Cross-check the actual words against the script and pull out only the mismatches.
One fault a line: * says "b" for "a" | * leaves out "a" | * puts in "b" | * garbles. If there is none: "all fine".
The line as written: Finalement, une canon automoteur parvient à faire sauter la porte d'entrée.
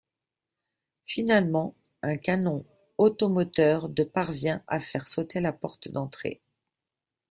* says "un" for "une"
* puts in "de"